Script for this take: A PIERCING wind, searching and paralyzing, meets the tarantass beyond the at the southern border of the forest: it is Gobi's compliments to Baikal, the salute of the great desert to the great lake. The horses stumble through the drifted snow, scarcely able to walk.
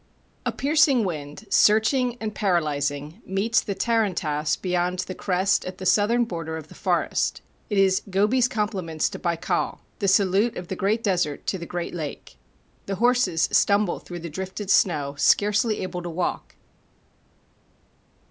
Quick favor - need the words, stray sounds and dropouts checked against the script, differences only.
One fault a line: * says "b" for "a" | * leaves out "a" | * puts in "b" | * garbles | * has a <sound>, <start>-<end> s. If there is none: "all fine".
* puts in "crest"